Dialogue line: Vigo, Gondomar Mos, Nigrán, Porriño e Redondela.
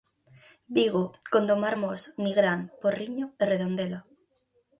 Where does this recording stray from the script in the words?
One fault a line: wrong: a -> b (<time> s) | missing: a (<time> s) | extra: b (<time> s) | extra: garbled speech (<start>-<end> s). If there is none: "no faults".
no faults